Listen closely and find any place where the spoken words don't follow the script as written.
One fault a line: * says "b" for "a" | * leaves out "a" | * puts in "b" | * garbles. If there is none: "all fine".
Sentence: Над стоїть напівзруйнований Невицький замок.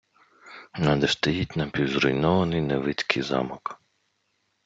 all fine